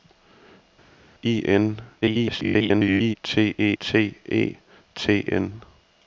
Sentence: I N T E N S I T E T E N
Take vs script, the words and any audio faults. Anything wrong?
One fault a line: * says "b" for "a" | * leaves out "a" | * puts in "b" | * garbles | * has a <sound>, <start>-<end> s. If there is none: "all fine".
* garbles
* leaves out "N S I"
* leaves out "E"